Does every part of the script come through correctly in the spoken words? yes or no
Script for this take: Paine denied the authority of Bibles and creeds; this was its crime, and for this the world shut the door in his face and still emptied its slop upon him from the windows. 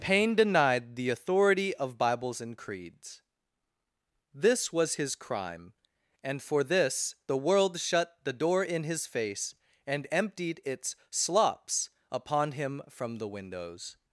no